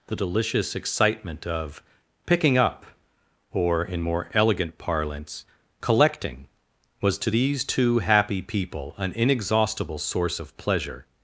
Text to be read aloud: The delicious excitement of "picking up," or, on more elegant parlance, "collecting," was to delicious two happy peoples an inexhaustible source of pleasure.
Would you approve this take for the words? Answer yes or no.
no